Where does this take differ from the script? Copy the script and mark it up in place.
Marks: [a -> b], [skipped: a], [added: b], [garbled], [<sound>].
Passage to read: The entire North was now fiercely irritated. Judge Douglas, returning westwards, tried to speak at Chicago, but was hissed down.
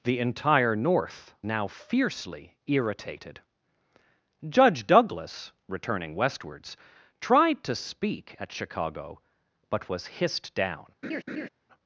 The entire North [skipped: was] now fiercely irritated. Judge Douglas, returning westwards, tried to speak at Chicago, but was hissed down. [laugh]